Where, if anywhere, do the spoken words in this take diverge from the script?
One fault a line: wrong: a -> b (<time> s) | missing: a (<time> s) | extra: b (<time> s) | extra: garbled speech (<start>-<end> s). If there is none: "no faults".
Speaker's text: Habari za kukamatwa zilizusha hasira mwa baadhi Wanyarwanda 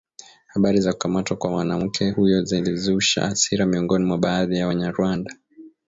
extra: kwa mwanamke huyo (1.4 s)
extra: miongoni (3.7 s)
extra: ya (4.6 s)